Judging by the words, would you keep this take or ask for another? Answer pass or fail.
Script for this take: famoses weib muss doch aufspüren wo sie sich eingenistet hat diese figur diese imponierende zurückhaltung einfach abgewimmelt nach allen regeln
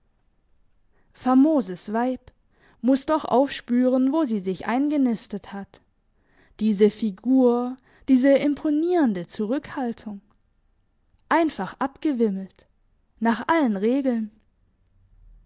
pass